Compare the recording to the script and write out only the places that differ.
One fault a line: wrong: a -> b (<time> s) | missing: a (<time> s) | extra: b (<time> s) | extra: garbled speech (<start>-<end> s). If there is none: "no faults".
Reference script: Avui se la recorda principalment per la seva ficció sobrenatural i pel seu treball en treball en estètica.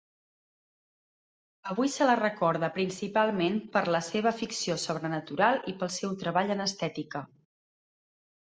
missing: treball en (6.7 s)